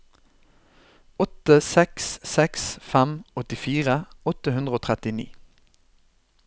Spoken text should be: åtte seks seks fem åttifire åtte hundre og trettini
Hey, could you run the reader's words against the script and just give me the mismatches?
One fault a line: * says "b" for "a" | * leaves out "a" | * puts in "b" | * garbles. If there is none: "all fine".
all fine